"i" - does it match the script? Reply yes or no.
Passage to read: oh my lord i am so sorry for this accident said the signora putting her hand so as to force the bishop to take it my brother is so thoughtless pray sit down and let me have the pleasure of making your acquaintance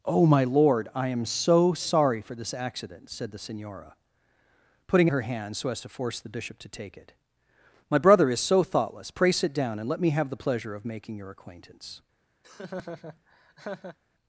yes